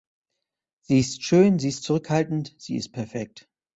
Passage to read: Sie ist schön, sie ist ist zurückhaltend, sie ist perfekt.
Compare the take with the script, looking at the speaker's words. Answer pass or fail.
fail